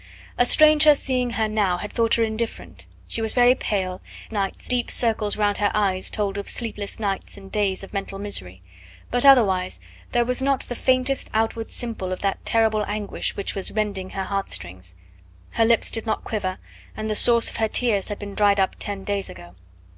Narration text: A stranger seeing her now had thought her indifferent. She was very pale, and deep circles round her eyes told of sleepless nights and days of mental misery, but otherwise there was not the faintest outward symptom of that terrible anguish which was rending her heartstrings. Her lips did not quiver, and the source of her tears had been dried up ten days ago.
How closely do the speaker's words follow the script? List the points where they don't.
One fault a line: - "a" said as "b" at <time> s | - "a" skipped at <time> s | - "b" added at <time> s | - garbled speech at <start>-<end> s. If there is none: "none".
- "and" said as "nights" at 4.3 s